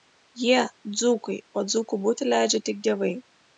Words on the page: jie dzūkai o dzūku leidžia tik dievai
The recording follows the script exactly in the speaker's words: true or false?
false